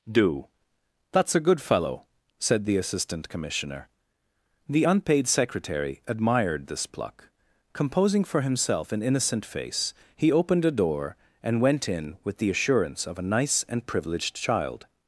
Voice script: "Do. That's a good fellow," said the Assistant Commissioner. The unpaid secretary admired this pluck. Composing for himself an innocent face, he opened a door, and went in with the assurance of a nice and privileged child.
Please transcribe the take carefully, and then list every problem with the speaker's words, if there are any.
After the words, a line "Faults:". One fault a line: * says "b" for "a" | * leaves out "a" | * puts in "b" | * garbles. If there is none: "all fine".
"Do. That's a good fellow," said the Assistant Commissioner. The unpaid secretary admired this pluck. Composing for himself an innocent face, he opened a door, and went in with the assurance of a nice and privileged child.
Faults:
all fine